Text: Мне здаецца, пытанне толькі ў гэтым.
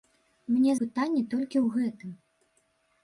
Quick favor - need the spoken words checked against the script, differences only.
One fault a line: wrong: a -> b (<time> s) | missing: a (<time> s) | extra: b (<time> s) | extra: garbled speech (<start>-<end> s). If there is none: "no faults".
missing: здаецца (0.7 s)